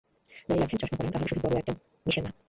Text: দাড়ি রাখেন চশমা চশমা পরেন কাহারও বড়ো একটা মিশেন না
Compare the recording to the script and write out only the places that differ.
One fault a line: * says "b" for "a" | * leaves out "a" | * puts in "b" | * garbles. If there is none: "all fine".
* leaves out "চশমা"
* puts in "সহিত"